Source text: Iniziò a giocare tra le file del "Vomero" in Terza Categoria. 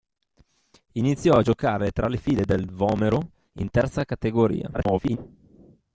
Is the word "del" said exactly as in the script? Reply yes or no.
yes